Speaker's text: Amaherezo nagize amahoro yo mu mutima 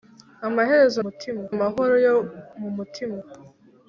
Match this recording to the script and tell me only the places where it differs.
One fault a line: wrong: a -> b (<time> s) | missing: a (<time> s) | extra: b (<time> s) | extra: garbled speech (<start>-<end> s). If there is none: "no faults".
wrong: nagize -> mutima (1.0 s)